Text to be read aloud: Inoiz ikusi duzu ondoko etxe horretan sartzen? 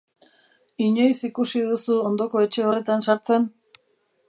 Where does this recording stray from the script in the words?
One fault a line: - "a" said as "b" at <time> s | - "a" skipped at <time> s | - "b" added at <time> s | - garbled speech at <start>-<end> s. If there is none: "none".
none